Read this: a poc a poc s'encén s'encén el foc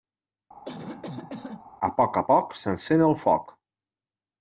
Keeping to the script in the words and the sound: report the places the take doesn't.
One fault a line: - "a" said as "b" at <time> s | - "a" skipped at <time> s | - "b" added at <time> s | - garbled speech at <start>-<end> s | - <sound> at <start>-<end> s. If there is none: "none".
- cough at 0.6-1.6 s
- "s'encén" skipped at 3.0 s